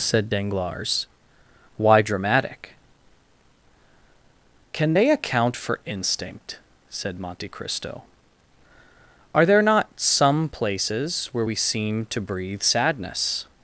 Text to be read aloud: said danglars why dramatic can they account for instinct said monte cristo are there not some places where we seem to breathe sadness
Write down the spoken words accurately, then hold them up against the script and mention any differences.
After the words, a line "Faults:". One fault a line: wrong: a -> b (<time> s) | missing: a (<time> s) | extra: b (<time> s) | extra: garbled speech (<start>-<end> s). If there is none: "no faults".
said danglars why dramatic can they account for instinct said monte cristo are there not some places where we seem to breathe sadness
Faults:
no faults